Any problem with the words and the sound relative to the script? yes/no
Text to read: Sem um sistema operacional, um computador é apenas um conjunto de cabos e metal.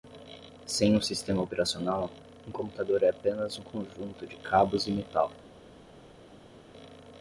no